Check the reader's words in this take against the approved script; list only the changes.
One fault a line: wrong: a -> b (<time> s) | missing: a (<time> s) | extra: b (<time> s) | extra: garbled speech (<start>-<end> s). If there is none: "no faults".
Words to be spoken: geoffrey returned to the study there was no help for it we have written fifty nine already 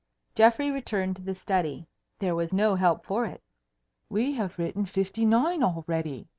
no faults